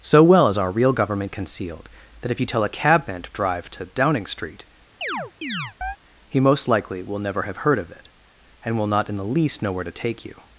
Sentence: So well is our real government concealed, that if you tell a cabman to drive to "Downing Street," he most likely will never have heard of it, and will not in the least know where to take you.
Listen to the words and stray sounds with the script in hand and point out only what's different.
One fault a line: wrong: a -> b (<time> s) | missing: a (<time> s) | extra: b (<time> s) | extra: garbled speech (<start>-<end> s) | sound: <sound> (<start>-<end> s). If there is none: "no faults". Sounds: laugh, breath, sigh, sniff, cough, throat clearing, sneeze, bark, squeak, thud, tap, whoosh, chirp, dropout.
sound: chirp (5.0-6.0 s)